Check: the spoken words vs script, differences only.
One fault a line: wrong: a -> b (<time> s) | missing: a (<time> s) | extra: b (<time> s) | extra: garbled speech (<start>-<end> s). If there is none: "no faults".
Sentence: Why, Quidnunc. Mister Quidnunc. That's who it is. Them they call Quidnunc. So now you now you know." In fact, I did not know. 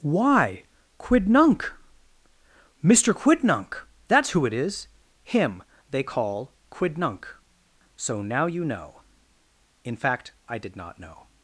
wrong: Them -> Him (5.2 s)
missing: now you (8.6 s)